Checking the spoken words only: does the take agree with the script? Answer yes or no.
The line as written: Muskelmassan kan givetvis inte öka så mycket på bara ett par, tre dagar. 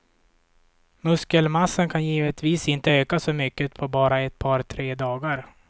yes